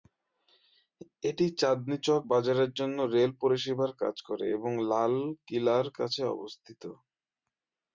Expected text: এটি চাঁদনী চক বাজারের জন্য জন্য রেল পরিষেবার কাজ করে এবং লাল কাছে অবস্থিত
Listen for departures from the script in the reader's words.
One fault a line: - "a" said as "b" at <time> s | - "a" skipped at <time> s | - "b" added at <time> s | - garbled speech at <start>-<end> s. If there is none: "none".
- "জন্য" skipped at 3.0 s
- "কিলার" added at 5.5 s